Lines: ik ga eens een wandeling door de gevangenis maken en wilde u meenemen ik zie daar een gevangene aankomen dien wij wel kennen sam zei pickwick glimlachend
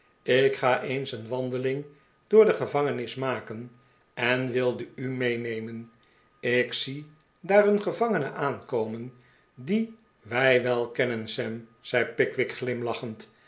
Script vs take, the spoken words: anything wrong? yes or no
no